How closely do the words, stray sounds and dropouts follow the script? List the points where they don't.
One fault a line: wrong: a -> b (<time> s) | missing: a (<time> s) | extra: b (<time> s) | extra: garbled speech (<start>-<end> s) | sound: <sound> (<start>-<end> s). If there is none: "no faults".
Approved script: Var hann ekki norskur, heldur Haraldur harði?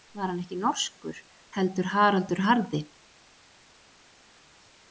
no faults